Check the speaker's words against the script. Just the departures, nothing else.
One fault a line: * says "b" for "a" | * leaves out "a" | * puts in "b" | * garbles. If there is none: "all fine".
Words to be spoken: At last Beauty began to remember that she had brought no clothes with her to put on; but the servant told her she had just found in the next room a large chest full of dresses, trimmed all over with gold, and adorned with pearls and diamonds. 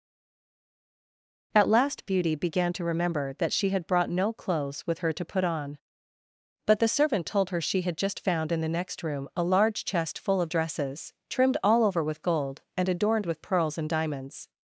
all fine